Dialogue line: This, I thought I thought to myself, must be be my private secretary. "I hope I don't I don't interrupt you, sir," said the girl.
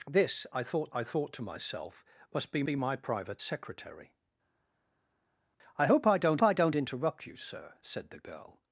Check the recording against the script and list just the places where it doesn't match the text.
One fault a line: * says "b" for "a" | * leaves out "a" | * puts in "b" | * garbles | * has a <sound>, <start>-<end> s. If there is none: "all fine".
all fine